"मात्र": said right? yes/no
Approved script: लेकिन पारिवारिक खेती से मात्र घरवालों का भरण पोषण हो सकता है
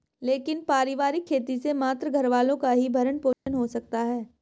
yes